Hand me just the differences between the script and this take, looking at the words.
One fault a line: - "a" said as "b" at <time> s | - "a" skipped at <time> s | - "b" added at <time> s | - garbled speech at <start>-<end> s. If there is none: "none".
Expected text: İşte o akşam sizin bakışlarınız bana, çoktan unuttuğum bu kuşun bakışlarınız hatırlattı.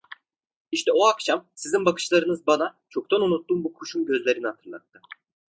- "bakışlarınız" said as "gözlerini" at 4.1 s